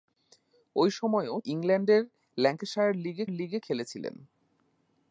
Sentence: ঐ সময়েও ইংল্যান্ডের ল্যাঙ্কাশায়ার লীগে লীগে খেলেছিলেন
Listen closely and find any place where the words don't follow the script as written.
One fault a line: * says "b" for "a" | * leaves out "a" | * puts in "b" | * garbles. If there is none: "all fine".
all fine